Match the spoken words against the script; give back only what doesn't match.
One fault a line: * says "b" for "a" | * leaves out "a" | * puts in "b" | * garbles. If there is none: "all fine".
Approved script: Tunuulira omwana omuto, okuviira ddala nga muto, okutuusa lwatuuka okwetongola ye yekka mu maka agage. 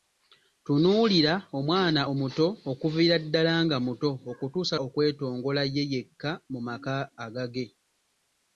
* leaves out "lwatuuka"